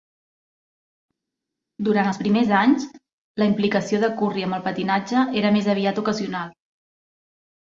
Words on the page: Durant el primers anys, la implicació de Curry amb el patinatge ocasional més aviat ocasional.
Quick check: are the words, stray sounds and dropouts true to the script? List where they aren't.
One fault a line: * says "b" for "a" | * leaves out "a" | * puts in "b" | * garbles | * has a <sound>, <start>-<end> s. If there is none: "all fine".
* says "els" for "el"
* says "era" for "ocasional"